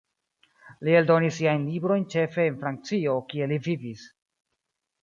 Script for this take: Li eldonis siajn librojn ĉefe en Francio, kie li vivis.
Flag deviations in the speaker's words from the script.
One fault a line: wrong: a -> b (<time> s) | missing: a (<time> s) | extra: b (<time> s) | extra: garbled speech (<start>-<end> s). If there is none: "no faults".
no faults